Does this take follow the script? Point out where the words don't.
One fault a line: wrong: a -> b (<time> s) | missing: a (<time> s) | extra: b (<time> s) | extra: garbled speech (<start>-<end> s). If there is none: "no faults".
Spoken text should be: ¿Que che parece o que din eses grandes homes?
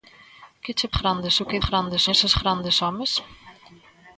wrong: parece -> grandes (1.0 s)
wrong: din -> grandes (1.7 s)